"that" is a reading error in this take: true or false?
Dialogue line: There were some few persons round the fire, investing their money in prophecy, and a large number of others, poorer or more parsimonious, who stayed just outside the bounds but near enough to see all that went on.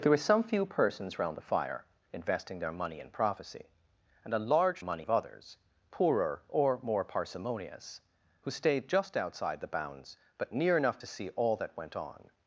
false